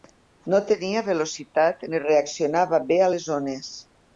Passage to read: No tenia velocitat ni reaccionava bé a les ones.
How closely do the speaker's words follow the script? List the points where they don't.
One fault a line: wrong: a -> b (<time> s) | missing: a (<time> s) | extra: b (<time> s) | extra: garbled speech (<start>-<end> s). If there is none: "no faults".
no faults